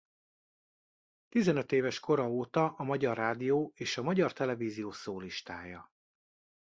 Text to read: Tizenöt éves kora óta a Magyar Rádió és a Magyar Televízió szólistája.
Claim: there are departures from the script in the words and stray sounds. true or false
false